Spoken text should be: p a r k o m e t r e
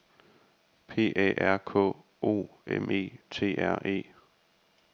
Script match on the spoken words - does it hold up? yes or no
yes